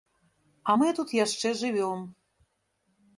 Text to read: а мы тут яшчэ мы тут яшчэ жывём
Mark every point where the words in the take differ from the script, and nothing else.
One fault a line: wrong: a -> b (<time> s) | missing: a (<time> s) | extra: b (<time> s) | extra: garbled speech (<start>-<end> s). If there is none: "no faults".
missing: мы тут яшчэ (1.5 s)